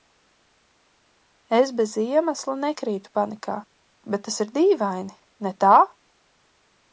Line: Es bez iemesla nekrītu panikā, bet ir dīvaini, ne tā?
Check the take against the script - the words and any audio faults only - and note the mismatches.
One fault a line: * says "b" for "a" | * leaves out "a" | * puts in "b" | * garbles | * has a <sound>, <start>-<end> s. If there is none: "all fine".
* puts in "tas"